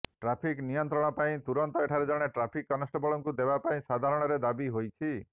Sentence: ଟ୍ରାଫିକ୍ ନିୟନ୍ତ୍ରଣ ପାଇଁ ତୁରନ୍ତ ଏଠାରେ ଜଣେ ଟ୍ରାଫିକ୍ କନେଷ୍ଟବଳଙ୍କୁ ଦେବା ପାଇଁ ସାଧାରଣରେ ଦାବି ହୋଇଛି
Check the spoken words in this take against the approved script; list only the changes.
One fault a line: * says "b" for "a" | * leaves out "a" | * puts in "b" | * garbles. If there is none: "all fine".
all fine